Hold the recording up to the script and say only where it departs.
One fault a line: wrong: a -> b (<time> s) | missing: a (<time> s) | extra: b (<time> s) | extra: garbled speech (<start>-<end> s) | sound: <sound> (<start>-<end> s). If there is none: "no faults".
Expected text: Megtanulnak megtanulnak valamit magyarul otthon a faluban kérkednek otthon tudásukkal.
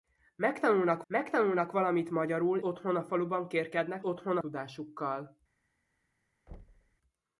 sound: thud (6.5-7.0 s)